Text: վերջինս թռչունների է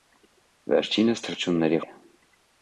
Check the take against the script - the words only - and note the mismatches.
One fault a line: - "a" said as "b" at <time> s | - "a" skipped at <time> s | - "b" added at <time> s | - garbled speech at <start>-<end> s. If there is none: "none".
none